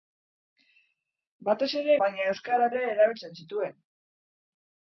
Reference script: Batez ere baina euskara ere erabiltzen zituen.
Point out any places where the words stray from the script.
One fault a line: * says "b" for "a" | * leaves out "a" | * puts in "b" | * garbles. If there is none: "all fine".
all fine